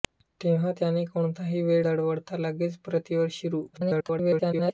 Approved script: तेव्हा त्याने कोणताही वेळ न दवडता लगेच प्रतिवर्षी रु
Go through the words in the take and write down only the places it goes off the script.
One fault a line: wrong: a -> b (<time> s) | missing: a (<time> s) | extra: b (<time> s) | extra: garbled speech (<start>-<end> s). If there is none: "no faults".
missing: न (1.9 s)
extra: garbled speech (3.7-4.7 s)